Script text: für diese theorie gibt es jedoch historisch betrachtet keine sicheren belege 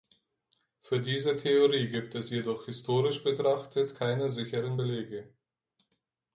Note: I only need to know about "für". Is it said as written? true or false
true